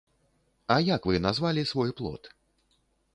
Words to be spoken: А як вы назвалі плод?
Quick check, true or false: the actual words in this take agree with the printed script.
false